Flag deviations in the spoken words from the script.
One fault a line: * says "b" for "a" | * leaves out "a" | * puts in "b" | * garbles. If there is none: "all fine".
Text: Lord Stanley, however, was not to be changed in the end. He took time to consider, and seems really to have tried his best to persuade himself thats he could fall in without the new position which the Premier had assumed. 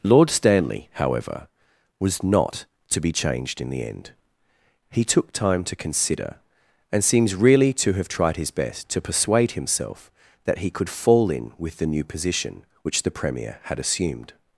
* says "that" for "thats"
* says "with" for "without"